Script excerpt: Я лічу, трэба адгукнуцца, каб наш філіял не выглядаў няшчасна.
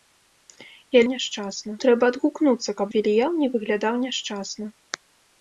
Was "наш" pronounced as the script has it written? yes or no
no